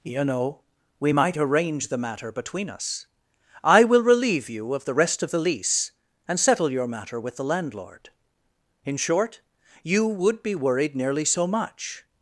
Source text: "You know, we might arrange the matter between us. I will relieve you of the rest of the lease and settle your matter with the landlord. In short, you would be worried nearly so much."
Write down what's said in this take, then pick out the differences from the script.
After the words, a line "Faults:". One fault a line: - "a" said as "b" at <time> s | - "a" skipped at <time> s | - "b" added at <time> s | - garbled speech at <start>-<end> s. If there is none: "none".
"You know, we might arrange the matter between us. I will relieve you of the rest of the lease and settle your matter with the landlord. In short, you would be worried nearly so much."
Faults:
none